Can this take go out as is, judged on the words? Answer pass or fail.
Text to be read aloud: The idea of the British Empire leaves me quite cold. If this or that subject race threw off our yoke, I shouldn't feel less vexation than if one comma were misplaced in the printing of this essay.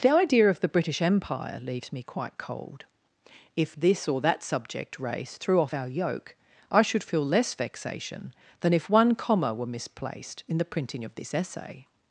fail